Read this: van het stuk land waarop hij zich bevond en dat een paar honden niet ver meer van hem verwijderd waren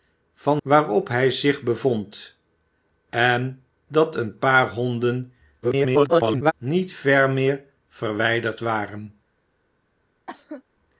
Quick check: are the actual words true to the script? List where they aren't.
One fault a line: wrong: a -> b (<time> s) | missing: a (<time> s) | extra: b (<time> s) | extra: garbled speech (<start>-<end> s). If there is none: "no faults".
missing: het stuk land (0.6 s)
extra: garbled speech (5.6-6.5 s)
missing: van hem (7.6 s)